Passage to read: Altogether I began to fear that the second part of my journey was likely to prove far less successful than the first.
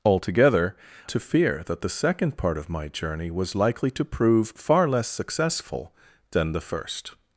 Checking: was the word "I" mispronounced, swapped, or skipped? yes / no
yes